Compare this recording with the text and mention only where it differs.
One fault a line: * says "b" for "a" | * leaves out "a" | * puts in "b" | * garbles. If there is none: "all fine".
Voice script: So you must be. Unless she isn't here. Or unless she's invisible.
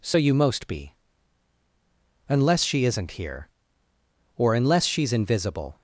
* says "most" for "must"